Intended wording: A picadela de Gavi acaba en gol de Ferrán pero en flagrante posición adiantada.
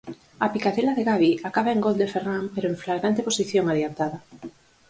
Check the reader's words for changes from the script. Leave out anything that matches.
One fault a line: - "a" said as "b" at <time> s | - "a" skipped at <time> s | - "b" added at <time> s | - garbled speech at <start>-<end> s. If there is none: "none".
none